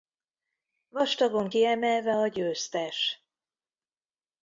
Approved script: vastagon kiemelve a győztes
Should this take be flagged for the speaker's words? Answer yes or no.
no